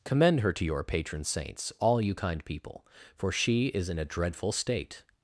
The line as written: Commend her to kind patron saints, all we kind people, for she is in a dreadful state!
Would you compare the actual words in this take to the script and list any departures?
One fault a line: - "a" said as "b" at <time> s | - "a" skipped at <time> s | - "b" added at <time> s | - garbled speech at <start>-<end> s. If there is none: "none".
- "kind" said as "your" at 0.7 s
- "we" said as "you" at 2.0 s